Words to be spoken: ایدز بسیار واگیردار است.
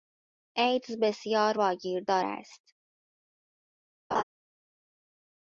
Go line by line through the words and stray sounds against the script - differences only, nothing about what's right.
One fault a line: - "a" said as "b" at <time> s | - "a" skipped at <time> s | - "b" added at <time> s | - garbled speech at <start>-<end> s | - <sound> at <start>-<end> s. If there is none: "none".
- laugh at 4.1-4.2 s